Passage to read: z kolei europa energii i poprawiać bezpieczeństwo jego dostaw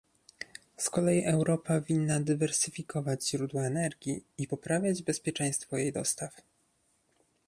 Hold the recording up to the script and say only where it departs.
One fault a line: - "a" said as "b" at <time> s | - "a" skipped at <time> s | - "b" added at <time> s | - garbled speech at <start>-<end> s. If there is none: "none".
- "winna dywersyfikować źródła" added at 1.8 s
- "jego" said as "jej" at 5.8 s